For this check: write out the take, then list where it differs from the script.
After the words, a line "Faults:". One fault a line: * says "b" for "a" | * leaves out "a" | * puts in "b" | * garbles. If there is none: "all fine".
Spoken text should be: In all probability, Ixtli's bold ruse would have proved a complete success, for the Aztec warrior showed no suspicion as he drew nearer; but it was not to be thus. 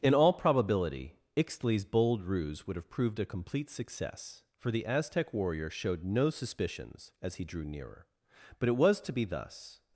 In all probability, Ixtli's bold ruse would have proved a complete success, for the Aztec warrior showed no suspicions as he drew nearer; but it was to be thus.
Faults:
* says "suspicions" for "suspicion"
* leaves out "not"